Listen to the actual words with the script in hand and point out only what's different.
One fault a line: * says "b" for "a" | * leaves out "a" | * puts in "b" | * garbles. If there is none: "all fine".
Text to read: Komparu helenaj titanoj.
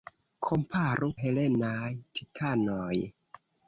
all fine